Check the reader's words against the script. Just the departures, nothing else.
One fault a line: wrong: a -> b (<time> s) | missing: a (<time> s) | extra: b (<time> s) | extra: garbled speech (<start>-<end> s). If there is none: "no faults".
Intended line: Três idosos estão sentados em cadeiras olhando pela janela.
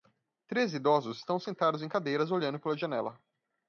no faults